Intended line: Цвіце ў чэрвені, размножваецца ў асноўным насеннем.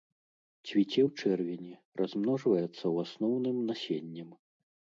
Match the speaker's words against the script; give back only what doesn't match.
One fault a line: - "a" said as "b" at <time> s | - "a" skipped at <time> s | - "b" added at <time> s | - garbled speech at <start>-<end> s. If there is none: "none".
none